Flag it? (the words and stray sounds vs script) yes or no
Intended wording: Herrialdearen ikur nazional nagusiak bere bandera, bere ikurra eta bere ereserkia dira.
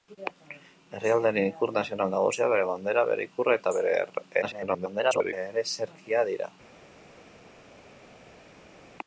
yes